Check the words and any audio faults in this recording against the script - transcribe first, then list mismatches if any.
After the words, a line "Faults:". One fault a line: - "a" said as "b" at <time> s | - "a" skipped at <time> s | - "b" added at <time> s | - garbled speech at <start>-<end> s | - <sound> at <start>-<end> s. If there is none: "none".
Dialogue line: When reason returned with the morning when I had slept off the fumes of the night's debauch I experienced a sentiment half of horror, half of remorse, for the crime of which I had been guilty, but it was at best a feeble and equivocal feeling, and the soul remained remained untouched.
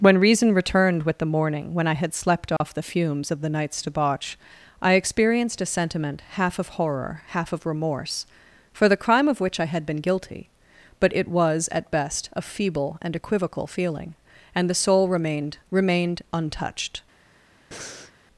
When reason returned with the morning when I had slept off the fumes of the night's debauch I experienced a sentiment half of horror, half of remorse, for the crime of which I had been guilty, but it was at best a feeble and equivocal feeling, and the soul remained remained untouched.
Faults:
- dropout at 2.6-2.6 s
- breath at 17.7-18.1 s